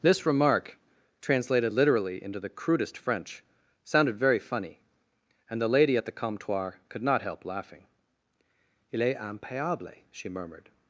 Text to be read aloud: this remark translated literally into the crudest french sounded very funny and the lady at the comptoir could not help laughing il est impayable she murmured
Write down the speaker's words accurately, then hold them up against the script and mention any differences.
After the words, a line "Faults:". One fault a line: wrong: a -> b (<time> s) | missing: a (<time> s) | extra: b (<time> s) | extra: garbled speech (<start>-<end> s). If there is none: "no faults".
this remark translated literally into the crudest french sounded very funny and the lady at the comptoir could not help laughing il est impayable she murmured
Faults:
no faults